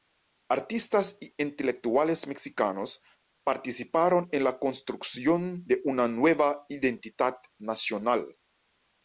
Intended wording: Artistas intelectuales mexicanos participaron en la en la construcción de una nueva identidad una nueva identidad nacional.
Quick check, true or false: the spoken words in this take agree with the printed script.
false